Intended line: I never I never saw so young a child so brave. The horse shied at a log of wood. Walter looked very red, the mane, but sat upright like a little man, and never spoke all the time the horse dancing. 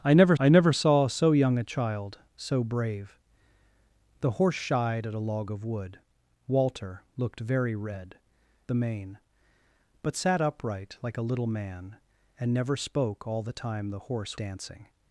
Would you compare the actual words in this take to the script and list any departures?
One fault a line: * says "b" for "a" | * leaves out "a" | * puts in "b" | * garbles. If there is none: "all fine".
all fine